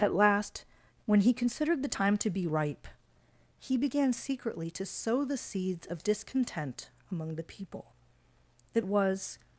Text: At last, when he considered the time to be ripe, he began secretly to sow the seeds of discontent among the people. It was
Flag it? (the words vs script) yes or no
no